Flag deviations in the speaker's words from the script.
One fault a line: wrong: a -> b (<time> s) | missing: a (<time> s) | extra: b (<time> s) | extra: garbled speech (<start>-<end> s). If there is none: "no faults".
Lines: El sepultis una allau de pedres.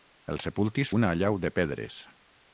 no faults